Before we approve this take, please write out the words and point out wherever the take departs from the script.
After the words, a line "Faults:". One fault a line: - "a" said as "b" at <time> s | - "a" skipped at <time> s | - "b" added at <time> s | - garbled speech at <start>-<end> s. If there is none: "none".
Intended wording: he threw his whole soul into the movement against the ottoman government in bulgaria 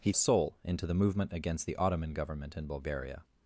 he soul into the movement against the ottoman government in bulgaria
Faults:
- "threw his whole" skipped at 0.1 s